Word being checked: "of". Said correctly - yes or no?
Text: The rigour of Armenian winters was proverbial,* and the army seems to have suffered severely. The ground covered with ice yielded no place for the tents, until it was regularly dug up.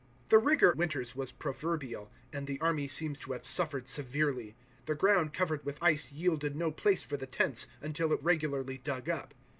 no